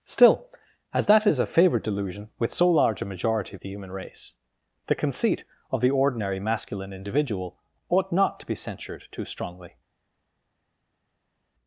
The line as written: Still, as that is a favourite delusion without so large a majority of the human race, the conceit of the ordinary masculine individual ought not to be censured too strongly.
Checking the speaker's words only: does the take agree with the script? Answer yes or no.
no